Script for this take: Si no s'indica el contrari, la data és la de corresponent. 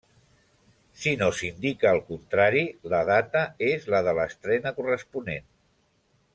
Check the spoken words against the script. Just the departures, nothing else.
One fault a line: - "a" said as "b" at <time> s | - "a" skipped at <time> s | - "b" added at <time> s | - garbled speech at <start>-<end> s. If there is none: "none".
- "l'estrena" added at 4.2 s